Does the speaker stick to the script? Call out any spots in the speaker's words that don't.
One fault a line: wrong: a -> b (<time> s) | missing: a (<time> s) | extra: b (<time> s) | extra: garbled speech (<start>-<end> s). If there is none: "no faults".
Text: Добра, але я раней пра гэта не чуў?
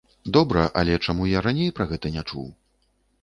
extra: чаму (1.1 s)